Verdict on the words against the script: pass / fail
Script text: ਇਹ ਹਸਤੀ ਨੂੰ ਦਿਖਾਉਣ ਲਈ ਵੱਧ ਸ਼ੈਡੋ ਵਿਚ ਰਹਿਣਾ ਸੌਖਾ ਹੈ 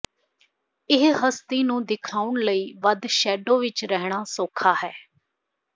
pass